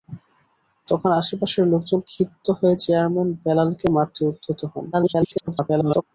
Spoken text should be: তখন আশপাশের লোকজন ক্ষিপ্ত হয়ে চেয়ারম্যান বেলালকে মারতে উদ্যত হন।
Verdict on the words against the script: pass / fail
fail